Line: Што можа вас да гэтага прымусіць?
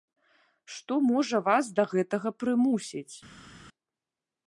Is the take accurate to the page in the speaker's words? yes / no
yes